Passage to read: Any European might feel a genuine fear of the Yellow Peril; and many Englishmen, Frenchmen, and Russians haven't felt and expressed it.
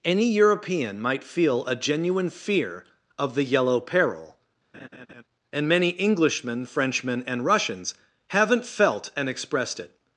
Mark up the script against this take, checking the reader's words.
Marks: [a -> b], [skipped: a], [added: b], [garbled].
Any European might feel a genuine fear of the Yellow Peril; and many Englishmen, Frenchmen, and Russians haven't felt and expressed it.